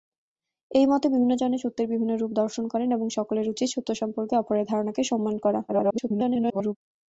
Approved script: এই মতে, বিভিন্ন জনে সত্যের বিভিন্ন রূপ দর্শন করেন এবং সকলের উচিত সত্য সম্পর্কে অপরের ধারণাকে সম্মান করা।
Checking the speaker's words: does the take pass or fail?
fail